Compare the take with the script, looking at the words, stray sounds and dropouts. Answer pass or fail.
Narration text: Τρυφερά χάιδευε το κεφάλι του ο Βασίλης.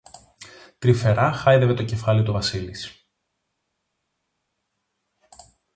pass